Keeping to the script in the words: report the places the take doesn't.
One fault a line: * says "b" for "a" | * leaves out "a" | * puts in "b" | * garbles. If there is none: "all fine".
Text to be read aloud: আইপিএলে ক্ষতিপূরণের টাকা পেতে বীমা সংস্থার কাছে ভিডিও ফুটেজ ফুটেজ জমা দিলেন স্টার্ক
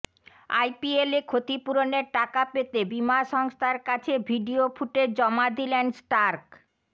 * leaves out "ফুটেজ"